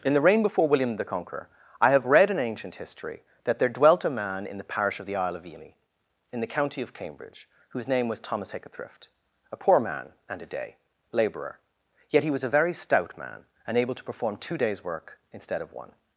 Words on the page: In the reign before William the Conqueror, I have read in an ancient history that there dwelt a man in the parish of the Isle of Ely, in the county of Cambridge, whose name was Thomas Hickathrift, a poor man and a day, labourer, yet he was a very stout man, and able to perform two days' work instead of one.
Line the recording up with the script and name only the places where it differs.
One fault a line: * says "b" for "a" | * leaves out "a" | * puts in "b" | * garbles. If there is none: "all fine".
* leaves out "an"